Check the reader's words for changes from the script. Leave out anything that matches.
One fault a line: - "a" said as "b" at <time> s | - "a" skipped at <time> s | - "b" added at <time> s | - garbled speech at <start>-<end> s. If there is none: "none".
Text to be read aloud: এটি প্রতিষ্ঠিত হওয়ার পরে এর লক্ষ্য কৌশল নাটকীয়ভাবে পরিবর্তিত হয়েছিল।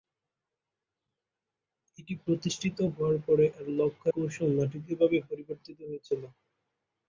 none